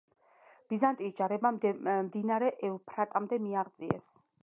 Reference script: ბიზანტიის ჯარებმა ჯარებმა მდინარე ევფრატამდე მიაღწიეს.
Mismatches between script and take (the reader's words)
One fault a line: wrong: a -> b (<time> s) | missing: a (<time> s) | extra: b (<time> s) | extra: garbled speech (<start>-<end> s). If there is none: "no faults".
missing: ჯარებმა (1.5 s)